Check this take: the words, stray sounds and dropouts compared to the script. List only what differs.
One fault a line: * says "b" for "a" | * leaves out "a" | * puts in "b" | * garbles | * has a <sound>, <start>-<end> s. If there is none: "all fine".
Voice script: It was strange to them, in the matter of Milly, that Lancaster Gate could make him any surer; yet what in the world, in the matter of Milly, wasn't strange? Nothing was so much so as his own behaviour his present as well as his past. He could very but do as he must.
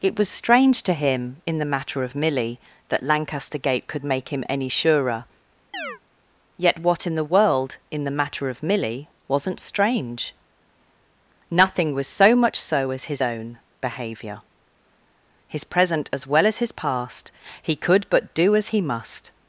* says "him" for "them"
* has a chirp, 5.7-6.0 s
* leaves out "very"